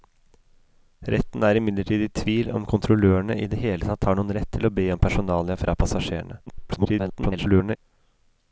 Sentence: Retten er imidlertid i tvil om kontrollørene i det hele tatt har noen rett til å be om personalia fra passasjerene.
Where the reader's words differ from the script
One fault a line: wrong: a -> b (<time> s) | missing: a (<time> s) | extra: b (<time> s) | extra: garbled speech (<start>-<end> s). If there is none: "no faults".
extra: garbled speech (6.5-7.8 s)